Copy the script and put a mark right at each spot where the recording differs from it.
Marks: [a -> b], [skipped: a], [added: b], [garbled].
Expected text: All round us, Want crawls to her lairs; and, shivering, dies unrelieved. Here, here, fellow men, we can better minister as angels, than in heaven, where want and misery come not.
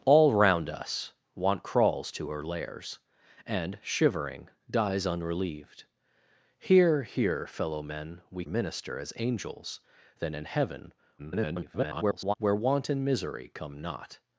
All round us, Want crawls to her lairs; and, shivering, dies unrelieved. Here, here, fellow men, we [skipped: can better] minister as angels, than in heaven, [garbled] where want and misery come not.